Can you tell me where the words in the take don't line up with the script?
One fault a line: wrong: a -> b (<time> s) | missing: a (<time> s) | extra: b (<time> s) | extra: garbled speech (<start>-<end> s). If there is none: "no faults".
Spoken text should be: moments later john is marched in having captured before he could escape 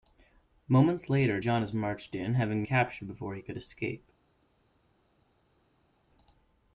no faults